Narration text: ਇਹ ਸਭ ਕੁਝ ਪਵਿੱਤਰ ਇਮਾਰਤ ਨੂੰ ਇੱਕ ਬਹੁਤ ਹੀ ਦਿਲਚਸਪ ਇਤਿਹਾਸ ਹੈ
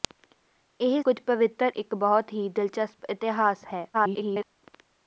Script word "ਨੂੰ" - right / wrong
wrong